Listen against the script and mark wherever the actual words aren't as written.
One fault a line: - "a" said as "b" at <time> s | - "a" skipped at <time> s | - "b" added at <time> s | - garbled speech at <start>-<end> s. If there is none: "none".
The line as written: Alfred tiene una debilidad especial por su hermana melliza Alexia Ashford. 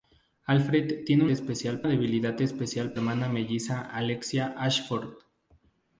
- "una" said as "especial" at 1.3 s
- "por su" skipped at 3.0 s